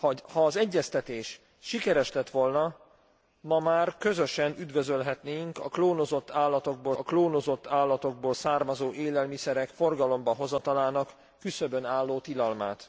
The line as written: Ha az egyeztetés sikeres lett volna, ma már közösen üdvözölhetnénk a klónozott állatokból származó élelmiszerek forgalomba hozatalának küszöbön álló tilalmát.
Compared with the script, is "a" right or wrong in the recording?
right